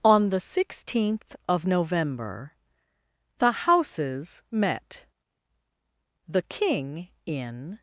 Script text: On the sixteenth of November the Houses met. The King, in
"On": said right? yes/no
yes